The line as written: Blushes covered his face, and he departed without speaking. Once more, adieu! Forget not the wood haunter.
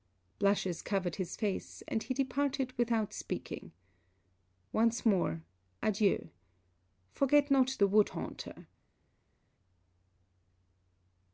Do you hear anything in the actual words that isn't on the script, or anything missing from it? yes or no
no